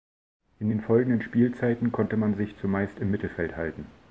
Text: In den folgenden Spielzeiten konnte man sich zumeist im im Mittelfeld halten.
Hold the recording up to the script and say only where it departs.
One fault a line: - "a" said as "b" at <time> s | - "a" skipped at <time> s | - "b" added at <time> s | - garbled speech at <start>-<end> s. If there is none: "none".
- "im" skipped at 3.1 s